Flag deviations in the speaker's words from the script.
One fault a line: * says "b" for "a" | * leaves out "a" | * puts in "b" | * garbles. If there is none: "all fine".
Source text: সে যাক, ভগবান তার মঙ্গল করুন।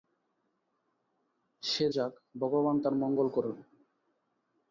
all fine